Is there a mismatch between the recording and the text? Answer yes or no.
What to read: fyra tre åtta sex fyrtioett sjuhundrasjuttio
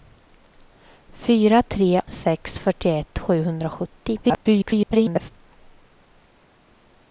yes